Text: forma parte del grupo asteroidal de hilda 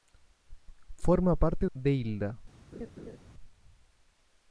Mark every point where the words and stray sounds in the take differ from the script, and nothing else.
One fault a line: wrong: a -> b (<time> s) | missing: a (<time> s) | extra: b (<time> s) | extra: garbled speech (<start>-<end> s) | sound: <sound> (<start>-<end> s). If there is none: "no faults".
missing: del grupo asteroidal (1.7 s)
sound: laugh (2.7-3.2 s)